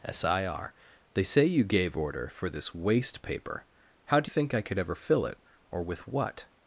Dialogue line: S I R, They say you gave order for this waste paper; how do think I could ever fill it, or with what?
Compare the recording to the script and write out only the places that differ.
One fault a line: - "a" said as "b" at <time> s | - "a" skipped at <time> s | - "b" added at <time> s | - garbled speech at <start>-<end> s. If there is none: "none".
none